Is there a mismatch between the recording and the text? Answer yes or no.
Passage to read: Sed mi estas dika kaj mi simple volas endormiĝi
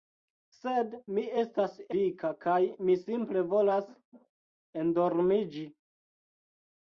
no